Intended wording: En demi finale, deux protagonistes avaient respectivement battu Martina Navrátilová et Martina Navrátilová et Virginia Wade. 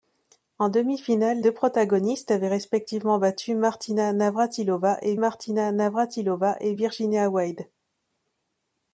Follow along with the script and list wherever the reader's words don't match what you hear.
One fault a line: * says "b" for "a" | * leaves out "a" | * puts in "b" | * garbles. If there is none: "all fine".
all fine